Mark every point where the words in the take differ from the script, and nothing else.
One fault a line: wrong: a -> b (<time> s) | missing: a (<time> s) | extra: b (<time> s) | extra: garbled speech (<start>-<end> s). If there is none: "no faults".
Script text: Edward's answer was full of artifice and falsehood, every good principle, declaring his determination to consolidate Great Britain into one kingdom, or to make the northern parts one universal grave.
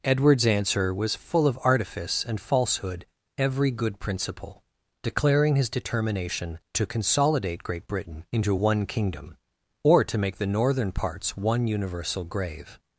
no faults